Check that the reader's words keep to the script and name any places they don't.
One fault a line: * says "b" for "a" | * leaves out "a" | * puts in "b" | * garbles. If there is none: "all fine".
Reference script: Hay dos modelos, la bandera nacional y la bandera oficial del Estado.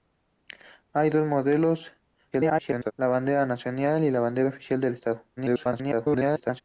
* garbles
* garbles